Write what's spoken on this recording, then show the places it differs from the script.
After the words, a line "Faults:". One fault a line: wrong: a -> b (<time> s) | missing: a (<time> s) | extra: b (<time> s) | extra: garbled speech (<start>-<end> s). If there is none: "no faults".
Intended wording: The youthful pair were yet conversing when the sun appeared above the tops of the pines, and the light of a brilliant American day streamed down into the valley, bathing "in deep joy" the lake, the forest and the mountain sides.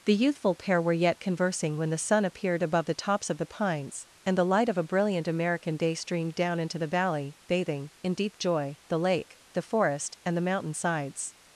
The youthful pair were yet conversing when the sun appeared above the tops of the pines, and the light of a brilliant American day streamed down into the valley, bathing "in deep joy" the lake, the forest and the mountain sides.
Faults:
no faults